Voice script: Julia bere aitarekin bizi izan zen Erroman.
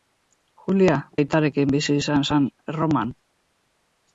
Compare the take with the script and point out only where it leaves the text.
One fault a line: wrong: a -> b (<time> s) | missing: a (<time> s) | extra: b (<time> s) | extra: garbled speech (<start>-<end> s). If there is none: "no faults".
missing: bere (0.9 s)